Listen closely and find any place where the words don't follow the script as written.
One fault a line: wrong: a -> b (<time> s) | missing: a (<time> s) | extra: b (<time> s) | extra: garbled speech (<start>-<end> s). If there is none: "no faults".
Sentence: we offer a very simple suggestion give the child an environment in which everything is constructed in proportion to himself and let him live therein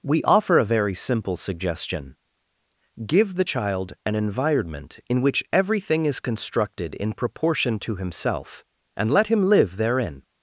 no faults